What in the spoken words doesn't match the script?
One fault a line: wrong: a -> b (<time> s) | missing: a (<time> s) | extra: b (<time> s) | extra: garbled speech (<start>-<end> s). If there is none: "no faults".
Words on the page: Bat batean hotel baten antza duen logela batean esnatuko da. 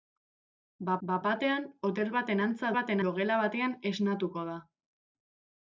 extra: bat (1.1 s)
wrong: duen -> baten (2.8 s)